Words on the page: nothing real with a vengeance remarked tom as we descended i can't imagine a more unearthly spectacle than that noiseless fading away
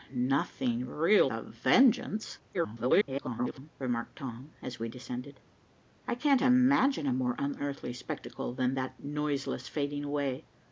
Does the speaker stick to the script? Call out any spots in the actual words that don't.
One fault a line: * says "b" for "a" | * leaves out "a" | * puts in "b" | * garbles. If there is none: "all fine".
* leaves out "with"
* garbles